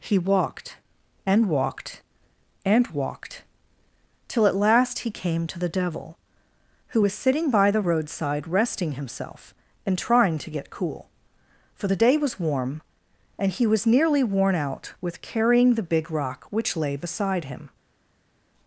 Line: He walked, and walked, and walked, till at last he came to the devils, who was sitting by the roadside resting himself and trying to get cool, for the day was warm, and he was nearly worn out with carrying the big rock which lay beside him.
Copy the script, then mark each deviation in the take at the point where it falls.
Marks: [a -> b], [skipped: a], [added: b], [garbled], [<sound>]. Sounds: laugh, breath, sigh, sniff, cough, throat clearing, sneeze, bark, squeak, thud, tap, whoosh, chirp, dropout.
He walked, and walked, and walked, till at last he came to the [devils, -> devil] who was sitting by the roadside resting himself and trying to get cool, for the day was warm, and he was nearly worn out with carrying the big rock which lay beside him.